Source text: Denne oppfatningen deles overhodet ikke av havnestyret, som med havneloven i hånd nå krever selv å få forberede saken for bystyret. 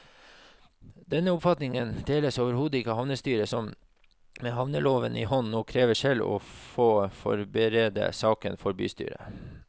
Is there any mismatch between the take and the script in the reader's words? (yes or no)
no